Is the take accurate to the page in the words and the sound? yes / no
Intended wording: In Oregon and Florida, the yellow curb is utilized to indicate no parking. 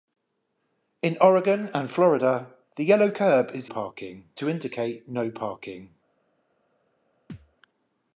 no